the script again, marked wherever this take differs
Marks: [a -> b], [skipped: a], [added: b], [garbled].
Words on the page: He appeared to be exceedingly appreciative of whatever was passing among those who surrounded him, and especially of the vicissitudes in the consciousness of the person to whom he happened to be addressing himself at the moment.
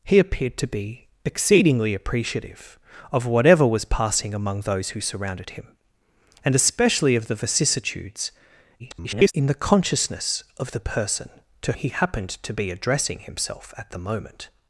He appeared to be exceedingly appreciative of whatever was passing among those who surrounded him, and especially of the vicissitudes [garbled] in the consciousness of the person to [skipped: whom] he happened to be addressing himself at the moment.